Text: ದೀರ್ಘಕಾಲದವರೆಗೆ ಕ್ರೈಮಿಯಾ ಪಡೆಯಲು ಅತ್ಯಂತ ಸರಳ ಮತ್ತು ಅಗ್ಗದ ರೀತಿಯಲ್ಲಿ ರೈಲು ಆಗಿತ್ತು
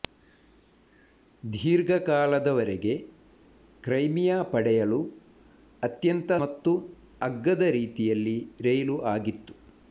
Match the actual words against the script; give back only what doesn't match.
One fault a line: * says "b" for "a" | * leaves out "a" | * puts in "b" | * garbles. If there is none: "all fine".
* leaves out "ಸರಳ"